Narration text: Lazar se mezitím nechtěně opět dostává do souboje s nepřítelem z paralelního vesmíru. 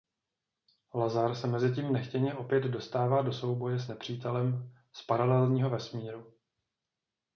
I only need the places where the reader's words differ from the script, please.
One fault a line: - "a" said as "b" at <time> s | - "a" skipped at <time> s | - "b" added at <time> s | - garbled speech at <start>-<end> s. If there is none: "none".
none